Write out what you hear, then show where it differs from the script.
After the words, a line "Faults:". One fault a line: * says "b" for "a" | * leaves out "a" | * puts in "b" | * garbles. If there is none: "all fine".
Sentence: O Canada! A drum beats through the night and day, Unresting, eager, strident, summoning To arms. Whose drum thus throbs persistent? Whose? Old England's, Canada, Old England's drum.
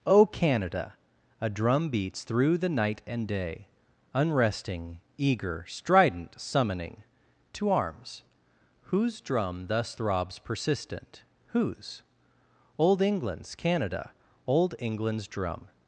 O Canada! A drum beats through the night and day, Unresting, eager, strident, summoning To arms. Whose drum thus throbs persistent? Whose? Old England's, Canada, Old England's drum.
Faults:
all fine